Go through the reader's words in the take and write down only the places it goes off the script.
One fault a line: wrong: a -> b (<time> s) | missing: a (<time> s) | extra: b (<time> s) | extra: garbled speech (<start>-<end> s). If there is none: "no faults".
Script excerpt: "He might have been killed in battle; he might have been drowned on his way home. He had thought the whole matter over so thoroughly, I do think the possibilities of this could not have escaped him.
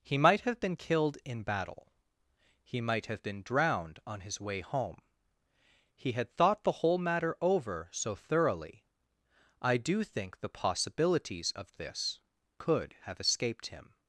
missing: not (12.9 s)